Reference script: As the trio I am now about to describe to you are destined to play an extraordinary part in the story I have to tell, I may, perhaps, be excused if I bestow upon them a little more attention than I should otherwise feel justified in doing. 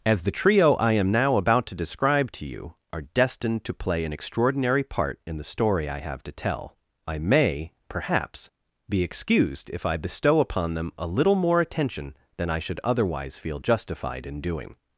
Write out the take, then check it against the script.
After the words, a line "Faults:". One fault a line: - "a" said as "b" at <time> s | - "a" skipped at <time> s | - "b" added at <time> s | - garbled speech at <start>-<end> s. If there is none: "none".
As the trio I am now about to describe to you are destined to play an extraordinary part in the story I have to tell, I may, perhaps, be excused if I bestow upon them a little more attention than I should otherwise feel justified in doing.
Faults:
none